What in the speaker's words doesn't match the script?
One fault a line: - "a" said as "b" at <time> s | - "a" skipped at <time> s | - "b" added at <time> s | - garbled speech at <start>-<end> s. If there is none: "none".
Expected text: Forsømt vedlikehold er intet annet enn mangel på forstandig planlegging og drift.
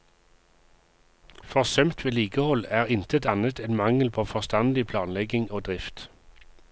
none